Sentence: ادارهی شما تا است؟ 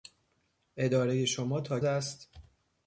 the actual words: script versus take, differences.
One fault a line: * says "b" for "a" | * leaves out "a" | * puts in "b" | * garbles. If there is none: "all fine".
all fine